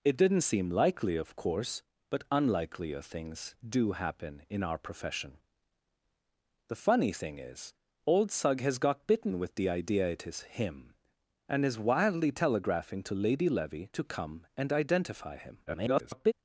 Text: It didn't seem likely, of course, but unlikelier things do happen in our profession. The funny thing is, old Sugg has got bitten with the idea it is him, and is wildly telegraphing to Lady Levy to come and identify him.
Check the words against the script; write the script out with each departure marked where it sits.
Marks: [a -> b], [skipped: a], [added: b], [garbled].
It didn't seem likely, of course, but unlikelier things do happen in our profession. The funny thing is, old Sugg has got bitten with the idea it is him, and is wildly telegraphing to Lady Levy to come and identify him. [garbled]